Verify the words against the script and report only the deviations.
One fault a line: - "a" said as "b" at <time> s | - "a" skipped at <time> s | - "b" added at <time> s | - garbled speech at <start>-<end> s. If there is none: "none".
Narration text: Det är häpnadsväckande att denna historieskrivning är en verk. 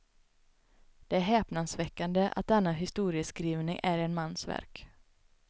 - "mans" added at 4.1 s